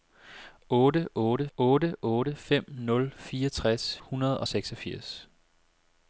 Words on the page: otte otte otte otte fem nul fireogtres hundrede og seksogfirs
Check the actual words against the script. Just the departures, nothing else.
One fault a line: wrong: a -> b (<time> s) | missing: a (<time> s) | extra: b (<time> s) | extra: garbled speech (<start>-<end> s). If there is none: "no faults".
no faults